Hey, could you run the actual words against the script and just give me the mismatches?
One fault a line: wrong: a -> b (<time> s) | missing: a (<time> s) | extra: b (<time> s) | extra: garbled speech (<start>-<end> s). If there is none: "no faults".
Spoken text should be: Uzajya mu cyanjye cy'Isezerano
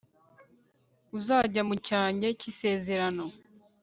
no faults